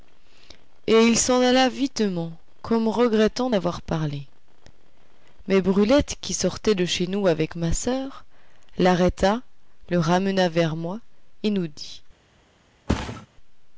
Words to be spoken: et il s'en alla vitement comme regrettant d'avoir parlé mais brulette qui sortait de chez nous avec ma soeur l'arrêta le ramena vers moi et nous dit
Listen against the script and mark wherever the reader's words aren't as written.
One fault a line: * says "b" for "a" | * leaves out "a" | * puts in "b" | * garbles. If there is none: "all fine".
all fine